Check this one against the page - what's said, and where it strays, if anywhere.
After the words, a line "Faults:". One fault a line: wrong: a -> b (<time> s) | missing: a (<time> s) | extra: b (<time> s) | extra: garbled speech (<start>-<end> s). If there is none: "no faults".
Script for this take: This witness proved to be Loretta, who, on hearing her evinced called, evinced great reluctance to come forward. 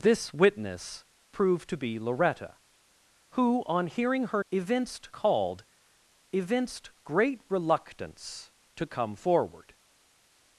This witness proved to be Loretta, who, on hearing her evinced called, evinced great reluctance to come forward.
Faults:
no faults